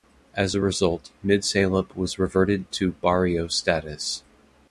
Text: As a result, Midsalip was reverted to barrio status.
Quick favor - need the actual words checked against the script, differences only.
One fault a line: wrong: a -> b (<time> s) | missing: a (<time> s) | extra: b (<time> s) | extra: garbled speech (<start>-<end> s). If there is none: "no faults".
no faults